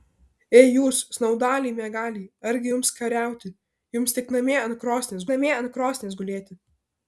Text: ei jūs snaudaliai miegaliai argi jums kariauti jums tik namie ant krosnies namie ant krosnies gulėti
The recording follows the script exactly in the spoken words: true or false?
true